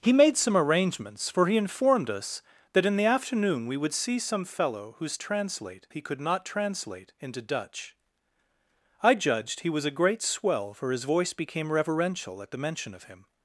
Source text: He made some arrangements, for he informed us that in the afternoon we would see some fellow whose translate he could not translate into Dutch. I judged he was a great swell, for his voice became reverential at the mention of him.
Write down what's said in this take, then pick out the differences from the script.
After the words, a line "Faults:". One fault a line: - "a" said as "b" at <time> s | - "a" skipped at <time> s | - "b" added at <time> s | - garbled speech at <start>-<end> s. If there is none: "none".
He made some arrangements, for he informed us that in the afternoon we would see some fellow whose translate he could not translate into Dutch. I judged he was a great swell, for his voice became reverential at the mention of him.
Faults:
none